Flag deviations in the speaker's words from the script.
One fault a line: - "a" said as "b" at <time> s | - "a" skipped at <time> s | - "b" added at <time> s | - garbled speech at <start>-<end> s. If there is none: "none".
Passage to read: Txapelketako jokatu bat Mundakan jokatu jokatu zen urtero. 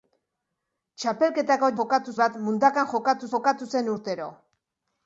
none